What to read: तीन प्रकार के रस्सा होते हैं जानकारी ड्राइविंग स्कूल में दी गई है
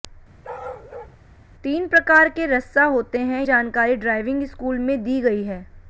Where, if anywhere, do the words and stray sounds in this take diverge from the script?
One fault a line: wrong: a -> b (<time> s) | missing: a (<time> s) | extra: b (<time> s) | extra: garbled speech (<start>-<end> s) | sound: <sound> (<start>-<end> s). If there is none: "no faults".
sound: bark (0.4-1.2 s)